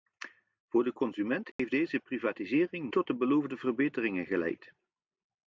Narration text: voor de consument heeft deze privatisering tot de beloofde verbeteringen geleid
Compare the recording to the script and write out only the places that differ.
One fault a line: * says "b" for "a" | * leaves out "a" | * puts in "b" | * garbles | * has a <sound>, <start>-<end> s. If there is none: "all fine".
* has a dropout, 1.5-1.6 s